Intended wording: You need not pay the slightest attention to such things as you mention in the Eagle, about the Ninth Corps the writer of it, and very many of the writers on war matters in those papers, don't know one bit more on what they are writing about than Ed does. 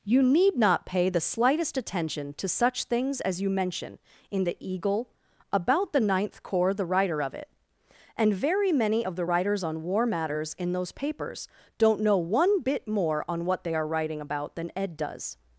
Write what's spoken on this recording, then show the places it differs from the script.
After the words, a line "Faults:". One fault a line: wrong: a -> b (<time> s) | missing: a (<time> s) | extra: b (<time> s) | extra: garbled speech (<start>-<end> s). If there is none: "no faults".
You need not pay the slightest attention to such things as you mention in the Eagle, about the Ninth Corps the writer of it, and very many of the writers on war matters in those papers, don't know one bit more on what they are writing about than Ed does.
Faults:
no faults